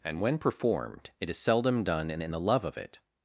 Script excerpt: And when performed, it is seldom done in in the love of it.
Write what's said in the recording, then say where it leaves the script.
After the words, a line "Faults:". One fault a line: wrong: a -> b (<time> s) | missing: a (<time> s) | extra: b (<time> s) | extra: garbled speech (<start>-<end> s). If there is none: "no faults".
And when performed, it is seldom done in in the love of it.
Faults:
no faults